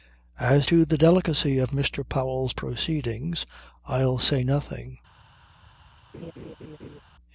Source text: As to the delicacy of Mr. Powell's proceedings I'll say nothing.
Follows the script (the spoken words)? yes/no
yes